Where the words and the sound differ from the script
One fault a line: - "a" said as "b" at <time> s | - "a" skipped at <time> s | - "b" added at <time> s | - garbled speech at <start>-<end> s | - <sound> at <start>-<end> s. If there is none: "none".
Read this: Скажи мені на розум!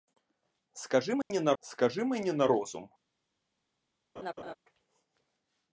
- dropout at 1.2-1.3 s
- "скажи мені на" added at 1.6 s
- laugh at 4.2-4.5 s